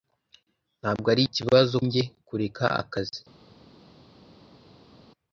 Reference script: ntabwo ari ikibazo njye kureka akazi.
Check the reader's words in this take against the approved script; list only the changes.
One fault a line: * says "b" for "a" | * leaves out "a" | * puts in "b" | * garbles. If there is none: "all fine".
all fine